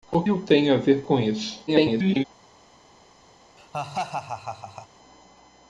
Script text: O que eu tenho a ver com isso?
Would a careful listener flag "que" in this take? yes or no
yes